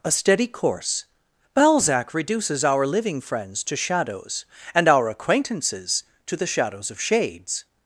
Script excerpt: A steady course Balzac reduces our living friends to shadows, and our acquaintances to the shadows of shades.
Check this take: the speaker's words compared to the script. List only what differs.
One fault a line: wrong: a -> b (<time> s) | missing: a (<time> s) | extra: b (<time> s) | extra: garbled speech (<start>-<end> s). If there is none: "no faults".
no faults